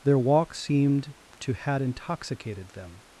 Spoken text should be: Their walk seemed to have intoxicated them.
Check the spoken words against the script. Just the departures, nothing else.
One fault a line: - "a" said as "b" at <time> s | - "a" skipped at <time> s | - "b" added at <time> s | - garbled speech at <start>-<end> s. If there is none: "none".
- "have" said as "had" at 1.5 s